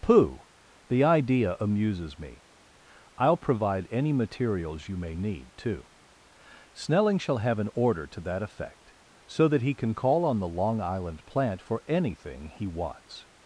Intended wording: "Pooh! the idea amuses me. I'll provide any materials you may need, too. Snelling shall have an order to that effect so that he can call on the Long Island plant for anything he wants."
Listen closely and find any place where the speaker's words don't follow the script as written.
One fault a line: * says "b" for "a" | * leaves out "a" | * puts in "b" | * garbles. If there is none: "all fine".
all fine